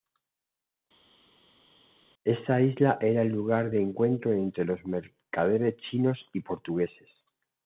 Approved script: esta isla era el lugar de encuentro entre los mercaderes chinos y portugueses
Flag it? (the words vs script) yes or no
no